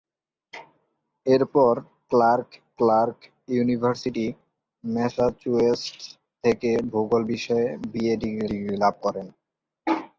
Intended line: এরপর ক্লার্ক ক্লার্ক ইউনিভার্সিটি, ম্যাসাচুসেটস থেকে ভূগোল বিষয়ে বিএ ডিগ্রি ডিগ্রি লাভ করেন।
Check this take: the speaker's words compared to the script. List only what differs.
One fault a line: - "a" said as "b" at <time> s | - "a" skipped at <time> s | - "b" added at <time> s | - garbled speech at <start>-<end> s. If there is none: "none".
none